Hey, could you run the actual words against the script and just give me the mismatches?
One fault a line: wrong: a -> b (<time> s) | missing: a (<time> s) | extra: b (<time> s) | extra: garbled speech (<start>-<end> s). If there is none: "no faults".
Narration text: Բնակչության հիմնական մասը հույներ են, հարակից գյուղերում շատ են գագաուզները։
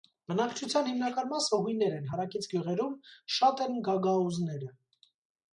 no faults